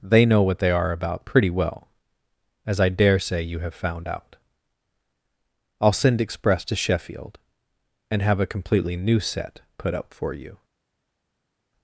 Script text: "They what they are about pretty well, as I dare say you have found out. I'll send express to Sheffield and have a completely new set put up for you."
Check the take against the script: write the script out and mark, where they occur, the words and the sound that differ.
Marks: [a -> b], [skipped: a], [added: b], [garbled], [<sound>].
"They [added: know] what they are about pretty well, as I dare say you have found out. I'll send express to Sheffield and have a completely new set put up for you."